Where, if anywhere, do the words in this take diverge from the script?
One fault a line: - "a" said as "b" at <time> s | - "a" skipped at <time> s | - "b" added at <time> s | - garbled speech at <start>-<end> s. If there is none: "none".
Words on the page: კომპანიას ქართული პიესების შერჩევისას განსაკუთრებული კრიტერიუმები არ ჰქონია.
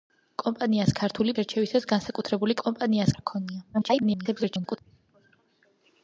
- "პიესების" skipped at 1.4 s
- "კრიტერიუმები" said as "კომპანიას" at 2.6 s
- garbled speech at 3.7-4.8 s